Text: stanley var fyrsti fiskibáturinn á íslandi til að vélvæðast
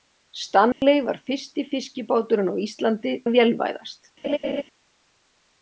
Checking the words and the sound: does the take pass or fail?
fail